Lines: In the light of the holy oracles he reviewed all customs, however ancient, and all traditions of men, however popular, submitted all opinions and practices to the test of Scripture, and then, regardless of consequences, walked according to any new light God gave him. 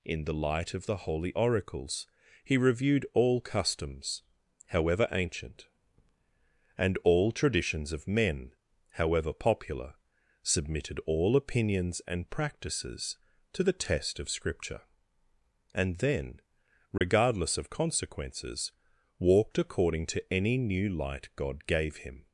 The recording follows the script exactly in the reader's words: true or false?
true